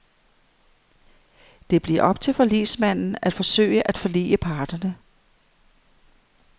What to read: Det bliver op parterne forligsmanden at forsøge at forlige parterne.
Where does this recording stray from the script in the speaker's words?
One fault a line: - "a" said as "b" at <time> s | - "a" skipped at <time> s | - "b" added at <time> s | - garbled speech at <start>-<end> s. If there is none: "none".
- "parterne" said as "til" at 2.2 s